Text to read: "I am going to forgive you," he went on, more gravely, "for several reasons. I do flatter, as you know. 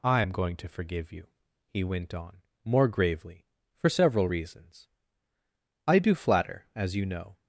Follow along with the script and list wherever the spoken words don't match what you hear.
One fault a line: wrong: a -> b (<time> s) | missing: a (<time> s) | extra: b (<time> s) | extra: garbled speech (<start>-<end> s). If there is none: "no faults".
no faults